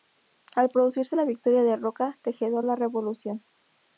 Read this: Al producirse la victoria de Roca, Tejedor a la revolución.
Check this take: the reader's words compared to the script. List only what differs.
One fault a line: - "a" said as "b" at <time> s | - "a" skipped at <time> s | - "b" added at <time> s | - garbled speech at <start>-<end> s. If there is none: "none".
none